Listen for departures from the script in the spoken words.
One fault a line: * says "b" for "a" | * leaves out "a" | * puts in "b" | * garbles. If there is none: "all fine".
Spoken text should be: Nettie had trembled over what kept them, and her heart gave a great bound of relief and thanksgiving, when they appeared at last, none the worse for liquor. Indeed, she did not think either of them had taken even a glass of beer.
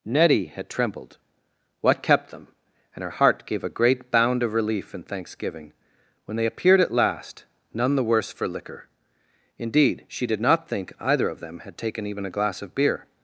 * leaves out "over"